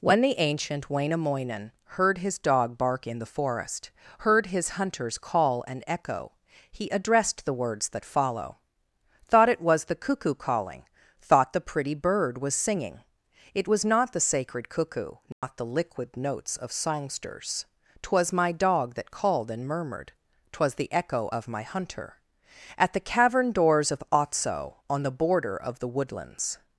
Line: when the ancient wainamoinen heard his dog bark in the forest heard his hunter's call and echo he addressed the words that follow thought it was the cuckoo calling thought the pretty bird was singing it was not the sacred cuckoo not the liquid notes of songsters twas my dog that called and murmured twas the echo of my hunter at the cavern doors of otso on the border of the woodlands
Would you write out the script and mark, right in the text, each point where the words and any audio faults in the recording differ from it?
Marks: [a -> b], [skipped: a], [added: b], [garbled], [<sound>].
when the ancient wainamoinen heard his dog bark in the forest heard his hunter's call and echo he addressed the words that follow thought it was the cuckoo calling thought the pretty bird was singing it was not the sacred cuckoo not [dropout] the liquid notes of songsters twas my dog that called and murmured twas the echo of my hunter at the cavern doors of otso on the border of the woodlands